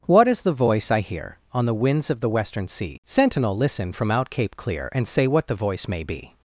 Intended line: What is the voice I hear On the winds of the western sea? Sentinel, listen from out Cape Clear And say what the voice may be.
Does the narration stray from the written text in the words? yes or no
no